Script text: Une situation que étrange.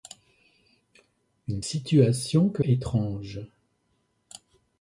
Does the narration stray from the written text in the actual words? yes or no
no